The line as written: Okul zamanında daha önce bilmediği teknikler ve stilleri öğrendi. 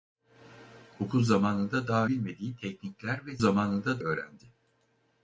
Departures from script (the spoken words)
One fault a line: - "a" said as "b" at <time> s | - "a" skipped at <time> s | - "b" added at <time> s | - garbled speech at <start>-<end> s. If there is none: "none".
- "önce" skipped at 2.0 s
- "stilleri" said as "zamanında" at 3.4 s